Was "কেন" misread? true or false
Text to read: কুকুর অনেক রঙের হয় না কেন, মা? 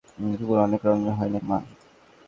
true